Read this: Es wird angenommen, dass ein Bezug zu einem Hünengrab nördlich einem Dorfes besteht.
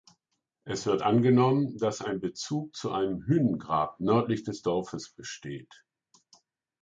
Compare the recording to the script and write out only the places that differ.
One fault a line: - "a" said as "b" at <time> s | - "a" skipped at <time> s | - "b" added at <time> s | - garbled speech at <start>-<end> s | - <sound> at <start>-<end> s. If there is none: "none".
- "einem" said as "des" at 4.4 s